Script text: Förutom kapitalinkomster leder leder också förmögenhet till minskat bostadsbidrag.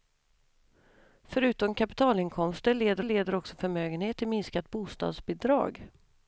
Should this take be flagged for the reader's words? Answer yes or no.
no